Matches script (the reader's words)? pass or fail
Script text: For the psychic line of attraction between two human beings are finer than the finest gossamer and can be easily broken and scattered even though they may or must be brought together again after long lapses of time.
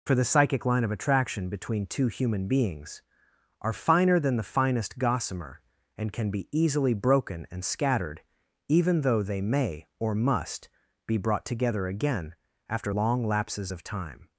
pass